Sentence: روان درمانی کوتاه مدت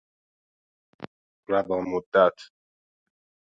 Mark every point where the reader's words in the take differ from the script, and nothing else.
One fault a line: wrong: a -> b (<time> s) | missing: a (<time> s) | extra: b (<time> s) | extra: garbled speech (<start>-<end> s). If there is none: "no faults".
missing: درمانی کوتاه (1.9 s)